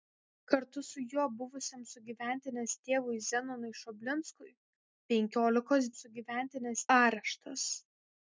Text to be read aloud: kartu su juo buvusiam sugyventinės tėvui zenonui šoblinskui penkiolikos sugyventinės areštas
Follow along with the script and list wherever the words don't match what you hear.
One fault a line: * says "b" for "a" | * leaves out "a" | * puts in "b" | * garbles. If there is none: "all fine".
all fine